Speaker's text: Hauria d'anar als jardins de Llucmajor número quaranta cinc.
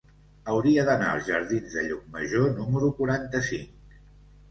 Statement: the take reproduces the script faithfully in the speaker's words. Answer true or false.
true